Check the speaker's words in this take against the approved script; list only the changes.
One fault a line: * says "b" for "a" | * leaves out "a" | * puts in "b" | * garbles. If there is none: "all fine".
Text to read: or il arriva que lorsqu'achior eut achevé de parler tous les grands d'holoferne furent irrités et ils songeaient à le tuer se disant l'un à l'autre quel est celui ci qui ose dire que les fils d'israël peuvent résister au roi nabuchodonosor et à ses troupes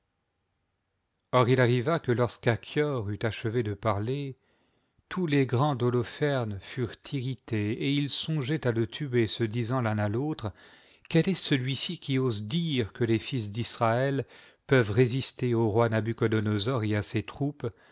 all fine